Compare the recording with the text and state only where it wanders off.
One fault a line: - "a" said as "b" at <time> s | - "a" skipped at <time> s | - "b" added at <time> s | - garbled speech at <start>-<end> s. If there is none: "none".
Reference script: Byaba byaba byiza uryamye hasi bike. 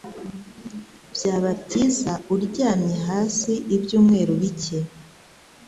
- "byaba" skipped at 1.5 s
- "ibyumweru" added at 3.8 s